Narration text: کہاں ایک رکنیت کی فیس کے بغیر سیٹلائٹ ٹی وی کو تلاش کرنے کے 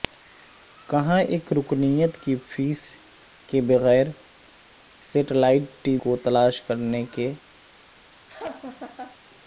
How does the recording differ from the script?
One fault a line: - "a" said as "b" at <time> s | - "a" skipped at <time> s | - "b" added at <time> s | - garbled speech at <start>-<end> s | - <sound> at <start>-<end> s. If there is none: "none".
- "وی" skipped at 6.0 s
- laugh at 8.3-9.2 s